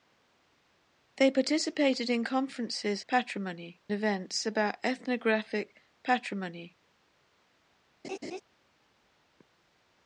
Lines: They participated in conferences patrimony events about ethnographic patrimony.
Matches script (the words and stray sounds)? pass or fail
fail